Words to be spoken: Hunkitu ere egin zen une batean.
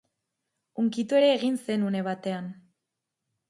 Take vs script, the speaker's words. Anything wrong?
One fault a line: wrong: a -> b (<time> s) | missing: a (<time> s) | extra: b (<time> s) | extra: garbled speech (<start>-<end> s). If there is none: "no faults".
no faults